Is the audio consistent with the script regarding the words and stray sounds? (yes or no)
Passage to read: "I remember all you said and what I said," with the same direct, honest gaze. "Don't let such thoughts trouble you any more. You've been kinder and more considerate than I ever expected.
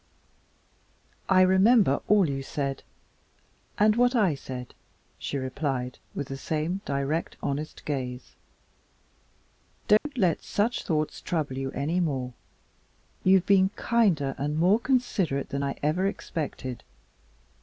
no